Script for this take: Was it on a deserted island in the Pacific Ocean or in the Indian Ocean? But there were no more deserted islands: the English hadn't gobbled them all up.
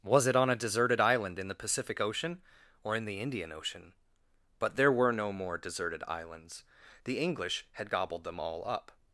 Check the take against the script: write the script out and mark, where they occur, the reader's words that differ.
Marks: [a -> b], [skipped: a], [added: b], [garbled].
Was it on a deserted island in the Pacific Ocean or in the Indian Ocean? But there were no more deserted islands: the English [hadn't -> had] gobbled them all up.